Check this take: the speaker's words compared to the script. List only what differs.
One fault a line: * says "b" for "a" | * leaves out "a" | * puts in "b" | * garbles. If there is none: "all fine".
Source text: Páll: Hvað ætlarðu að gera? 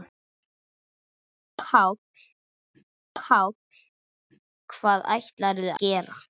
* puts in "páll"
* leaves out "að"